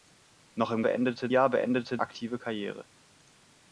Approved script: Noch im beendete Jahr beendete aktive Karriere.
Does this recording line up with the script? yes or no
yes